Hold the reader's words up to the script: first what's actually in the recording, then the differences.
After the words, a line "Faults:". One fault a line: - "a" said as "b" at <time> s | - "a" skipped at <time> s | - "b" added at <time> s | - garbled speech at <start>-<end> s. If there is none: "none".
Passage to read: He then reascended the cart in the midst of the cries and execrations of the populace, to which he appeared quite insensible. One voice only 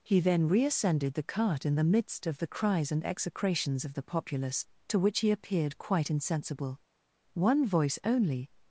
He then reascended the cart in the midst of the cries and execrations of the populace, to which he appeared quite insensible. One voice only
Faults:
none